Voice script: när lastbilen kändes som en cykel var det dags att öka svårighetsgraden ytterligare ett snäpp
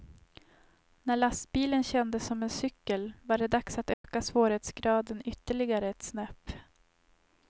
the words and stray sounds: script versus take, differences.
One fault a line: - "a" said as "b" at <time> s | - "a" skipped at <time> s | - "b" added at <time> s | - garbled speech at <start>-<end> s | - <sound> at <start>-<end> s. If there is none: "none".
- dropout at 3.9-4.0 s